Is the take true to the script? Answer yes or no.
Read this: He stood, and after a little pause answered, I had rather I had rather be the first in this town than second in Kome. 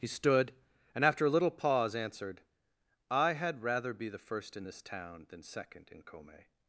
no